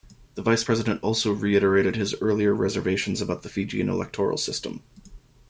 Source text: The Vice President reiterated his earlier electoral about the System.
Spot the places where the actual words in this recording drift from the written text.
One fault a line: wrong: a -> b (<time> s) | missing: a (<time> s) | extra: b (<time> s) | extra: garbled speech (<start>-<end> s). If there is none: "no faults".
extra: also (1.0 s)
wrong: electoral -> reservations (2.5 s)
extra: Fijian electoral (3.5 s)